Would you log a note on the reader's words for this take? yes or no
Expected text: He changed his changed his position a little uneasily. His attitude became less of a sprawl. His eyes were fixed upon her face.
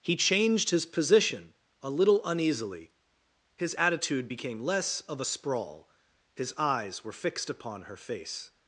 yes